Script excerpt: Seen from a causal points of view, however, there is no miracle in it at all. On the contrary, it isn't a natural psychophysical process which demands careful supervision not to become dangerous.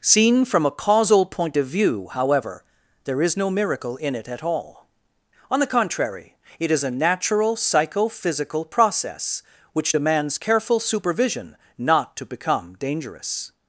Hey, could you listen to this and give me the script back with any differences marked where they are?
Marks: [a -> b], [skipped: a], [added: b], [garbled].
Seen from a causal [points -> point] of view, however, there is no miracle in it at all. On the contrary, it [isn't -> is] a natural psychophysical process which demands careful supervision not to become dangerous.